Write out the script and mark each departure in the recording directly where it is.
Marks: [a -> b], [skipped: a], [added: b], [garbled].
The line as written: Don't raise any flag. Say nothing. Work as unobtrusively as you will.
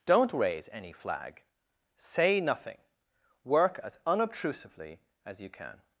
Don't raise any flag. Say nothing. Work as unobtrusively as you [will. -> can]